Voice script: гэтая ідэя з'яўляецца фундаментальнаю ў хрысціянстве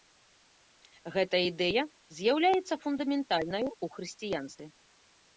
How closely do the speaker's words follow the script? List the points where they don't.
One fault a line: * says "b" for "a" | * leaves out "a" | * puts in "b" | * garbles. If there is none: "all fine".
all fine